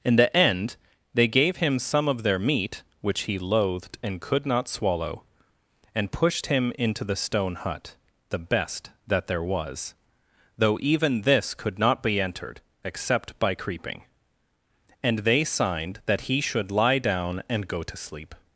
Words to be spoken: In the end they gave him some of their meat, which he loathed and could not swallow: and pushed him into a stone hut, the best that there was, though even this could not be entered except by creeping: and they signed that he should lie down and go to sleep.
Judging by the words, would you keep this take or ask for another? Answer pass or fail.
fail